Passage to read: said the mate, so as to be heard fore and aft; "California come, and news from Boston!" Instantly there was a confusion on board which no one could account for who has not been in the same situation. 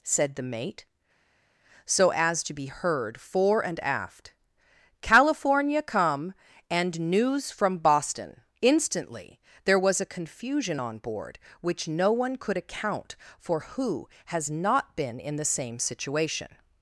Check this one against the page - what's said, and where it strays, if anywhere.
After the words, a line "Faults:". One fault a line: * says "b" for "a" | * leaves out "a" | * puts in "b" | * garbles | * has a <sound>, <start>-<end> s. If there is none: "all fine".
said the mate, so as to be heard fore and aft; "California come, and news from Boston!" Instantly there was a confusion on board which no one could account for who has not been in the same situation.
Faults:
all fine